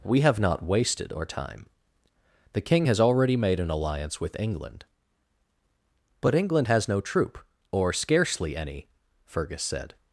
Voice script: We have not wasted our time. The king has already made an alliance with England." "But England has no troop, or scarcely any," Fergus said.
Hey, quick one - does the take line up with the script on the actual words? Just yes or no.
yes